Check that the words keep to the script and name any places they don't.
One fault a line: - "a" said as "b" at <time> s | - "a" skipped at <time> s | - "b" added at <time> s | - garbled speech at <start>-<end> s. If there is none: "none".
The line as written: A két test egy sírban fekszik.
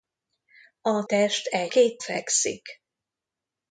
- "két" skipped at 1.0 s
- "sírban" said as "két" at 1.7 s